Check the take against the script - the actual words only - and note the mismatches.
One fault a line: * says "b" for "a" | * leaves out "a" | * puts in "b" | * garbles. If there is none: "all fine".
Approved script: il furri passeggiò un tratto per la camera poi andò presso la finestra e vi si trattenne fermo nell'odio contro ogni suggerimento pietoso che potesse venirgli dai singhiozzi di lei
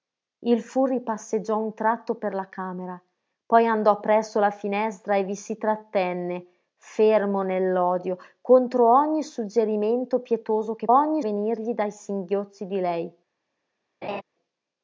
* says "ogni" for "potesse"